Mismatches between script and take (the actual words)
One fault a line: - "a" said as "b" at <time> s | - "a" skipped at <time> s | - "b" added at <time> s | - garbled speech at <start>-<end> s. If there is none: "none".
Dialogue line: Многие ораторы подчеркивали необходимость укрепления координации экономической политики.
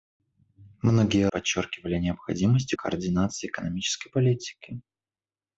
- "ораторы" skipped at 1.3 s
- "укрепления" skipped at 2.7 s